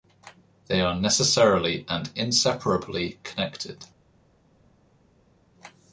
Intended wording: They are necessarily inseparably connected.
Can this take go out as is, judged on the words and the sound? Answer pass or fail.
fail